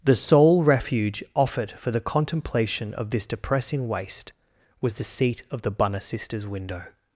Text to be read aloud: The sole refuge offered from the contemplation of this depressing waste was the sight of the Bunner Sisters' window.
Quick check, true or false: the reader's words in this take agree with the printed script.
false